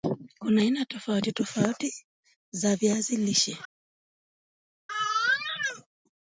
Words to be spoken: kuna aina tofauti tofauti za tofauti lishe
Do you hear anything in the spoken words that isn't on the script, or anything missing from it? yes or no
yes